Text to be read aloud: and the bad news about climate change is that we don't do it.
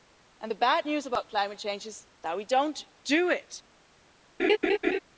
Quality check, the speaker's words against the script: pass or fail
pass